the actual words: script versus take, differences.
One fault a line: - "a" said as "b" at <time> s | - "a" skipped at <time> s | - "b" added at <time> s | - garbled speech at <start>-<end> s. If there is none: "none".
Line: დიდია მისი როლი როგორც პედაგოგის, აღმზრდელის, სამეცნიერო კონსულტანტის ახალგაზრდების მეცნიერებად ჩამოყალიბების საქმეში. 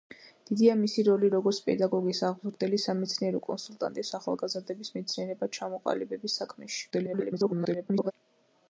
- garbled speech at 6.9-8.1 s